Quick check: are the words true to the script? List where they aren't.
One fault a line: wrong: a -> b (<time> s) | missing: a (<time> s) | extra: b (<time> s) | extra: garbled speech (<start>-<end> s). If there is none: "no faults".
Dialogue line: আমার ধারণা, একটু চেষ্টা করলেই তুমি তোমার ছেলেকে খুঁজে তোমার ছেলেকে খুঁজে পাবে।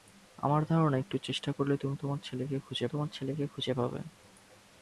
no faults